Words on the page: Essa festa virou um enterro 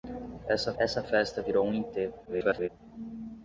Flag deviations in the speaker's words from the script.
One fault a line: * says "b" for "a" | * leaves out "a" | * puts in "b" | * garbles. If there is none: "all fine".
* puts in "essa"
* garbles